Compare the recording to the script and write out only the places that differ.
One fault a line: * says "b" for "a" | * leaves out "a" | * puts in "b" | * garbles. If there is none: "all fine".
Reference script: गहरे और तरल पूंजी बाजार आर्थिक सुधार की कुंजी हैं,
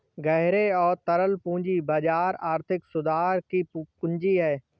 all fine